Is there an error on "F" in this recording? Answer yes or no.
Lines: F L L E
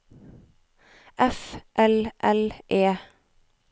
no